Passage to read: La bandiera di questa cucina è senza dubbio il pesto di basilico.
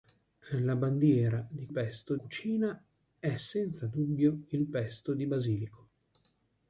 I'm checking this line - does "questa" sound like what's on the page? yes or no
no